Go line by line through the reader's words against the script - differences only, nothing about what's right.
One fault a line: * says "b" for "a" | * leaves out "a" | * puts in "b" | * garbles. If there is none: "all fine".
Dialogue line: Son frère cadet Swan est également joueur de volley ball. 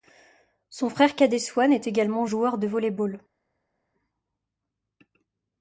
all fine